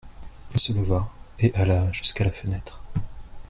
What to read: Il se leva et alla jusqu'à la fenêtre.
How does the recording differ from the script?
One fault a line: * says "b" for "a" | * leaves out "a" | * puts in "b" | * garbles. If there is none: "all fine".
all fine